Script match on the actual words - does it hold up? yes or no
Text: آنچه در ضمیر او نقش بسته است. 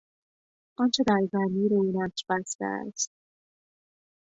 yes